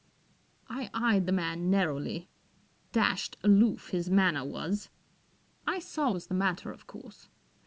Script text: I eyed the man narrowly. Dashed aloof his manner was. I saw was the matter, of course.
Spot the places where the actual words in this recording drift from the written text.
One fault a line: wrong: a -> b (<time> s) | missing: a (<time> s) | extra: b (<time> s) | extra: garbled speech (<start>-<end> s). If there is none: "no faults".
no faults